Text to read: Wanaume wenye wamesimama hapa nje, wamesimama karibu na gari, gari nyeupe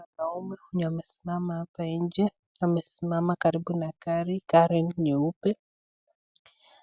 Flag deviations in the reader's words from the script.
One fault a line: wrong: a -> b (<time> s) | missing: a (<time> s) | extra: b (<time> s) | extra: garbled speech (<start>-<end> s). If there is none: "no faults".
no faults